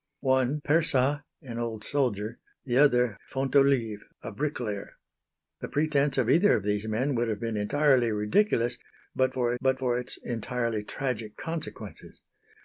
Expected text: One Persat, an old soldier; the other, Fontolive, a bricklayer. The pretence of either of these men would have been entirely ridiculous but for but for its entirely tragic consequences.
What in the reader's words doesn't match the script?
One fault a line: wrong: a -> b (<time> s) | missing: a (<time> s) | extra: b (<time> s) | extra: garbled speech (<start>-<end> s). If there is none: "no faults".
no faults